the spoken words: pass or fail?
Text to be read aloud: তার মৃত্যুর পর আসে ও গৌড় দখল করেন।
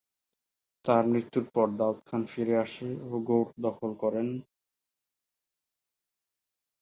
fail